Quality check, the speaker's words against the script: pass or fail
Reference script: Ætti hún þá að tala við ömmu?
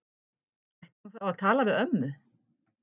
pass